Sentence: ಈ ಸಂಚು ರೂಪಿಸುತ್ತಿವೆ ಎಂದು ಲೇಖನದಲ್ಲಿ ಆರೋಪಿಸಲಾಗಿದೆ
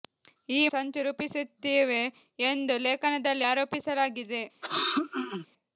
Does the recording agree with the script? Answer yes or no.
yes